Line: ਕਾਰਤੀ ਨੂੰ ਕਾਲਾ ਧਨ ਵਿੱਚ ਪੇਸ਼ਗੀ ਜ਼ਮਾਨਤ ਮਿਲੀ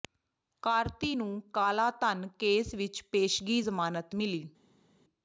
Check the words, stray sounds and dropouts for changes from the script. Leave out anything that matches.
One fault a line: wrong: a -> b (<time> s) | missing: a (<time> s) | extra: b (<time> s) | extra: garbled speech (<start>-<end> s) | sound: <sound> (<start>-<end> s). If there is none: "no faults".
extra: ਕੇਸ (2.4 s)